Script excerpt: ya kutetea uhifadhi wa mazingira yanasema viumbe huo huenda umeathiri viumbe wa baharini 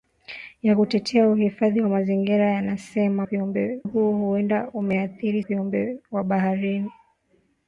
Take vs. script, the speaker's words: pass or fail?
pass